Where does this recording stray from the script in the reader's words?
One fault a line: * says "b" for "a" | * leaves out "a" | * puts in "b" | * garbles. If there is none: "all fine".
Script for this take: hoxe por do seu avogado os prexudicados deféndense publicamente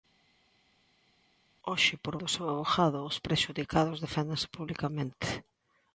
all fine